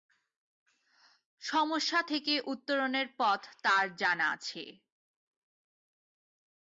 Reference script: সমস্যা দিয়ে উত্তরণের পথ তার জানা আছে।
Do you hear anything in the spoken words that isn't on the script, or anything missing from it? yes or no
yes